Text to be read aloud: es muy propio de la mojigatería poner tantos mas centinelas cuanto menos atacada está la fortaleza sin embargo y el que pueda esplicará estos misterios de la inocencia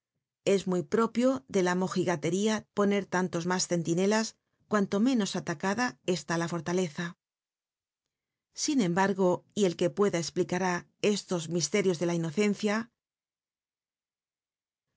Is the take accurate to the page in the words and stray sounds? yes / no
yes